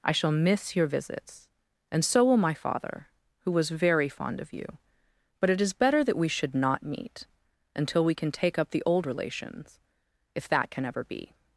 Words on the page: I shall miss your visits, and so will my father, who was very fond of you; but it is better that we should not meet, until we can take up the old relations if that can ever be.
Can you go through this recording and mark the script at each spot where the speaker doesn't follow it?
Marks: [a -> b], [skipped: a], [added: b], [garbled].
I shall miss your visits, and so will my father, who was very fond of you; but it is better that we should not meet, until we can take up the old relations if that can ever be.